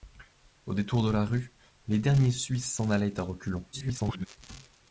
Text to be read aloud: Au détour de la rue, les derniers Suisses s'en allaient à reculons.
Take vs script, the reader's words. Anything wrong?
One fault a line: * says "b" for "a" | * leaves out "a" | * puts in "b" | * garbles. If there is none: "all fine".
* garbles